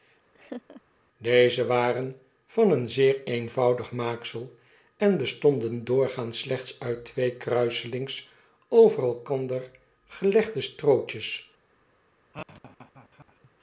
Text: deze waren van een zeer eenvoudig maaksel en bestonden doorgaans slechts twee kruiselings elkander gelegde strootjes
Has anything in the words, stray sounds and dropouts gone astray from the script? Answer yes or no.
yes